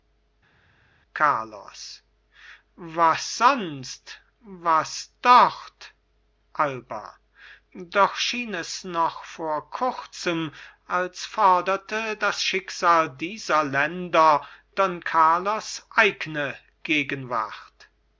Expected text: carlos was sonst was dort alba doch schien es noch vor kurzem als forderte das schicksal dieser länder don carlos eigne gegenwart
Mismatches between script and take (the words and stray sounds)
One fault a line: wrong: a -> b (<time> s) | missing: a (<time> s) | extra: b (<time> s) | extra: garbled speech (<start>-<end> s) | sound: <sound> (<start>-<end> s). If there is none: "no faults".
no faults